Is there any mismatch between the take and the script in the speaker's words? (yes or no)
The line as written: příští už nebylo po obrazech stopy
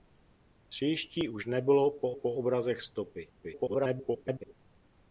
yes